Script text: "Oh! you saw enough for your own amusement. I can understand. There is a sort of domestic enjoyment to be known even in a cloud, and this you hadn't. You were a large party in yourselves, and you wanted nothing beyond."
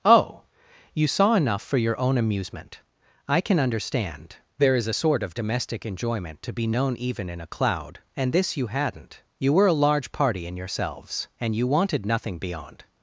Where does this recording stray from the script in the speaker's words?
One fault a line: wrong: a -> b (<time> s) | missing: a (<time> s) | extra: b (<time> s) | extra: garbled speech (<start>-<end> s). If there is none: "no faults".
no faults